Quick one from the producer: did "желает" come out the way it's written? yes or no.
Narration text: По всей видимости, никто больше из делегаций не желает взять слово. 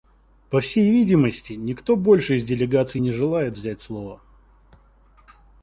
yes